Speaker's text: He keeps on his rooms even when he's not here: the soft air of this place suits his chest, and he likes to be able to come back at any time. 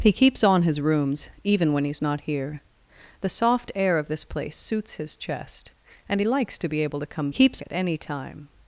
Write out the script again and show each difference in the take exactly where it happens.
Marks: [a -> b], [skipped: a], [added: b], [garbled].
He keeps on his rooms even when he's not here: the soft air of this place suits his chest, and he likes to be able to come [back -> keeps] at any time.